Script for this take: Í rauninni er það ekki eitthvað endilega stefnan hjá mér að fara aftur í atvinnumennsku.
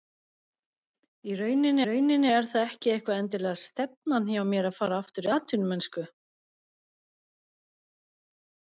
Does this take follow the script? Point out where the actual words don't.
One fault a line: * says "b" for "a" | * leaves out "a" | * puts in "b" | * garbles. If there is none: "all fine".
* puts in "rauninni"